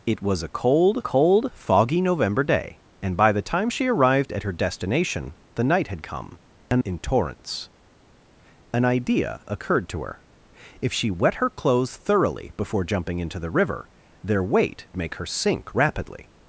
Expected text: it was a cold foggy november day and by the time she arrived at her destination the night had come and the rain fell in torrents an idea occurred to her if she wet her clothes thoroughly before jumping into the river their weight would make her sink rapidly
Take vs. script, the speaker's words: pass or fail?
fail